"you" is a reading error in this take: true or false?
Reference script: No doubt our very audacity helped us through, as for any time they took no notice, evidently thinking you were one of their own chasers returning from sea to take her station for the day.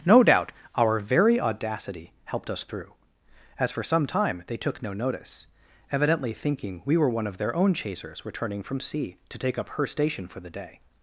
true